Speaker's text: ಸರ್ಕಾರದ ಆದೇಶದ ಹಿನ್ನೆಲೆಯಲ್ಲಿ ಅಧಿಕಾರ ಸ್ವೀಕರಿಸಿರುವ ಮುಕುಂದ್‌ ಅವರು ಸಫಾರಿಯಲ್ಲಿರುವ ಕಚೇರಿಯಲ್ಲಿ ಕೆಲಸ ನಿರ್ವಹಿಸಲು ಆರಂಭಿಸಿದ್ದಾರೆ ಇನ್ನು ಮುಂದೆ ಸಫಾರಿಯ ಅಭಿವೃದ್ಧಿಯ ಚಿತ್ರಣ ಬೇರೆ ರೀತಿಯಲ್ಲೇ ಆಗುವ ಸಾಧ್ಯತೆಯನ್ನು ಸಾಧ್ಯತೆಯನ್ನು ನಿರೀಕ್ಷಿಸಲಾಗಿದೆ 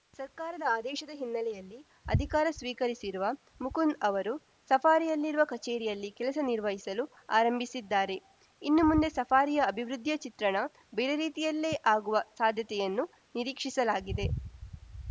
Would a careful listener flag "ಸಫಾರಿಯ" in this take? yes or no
no